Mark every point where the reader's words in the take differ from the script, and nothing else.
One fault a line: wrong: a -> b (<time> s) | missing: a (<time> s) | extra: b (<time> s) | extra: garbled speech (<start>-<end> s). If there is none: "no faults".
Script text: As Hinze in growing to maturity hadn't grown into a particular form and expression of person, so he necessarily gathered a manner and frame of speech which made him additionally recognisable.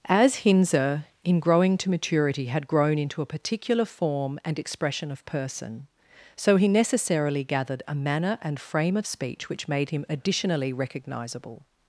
wrong: hadn't -> had (2.5 s)